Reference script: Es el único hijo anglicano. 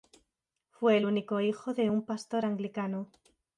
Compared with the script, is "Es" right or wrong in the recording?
wrong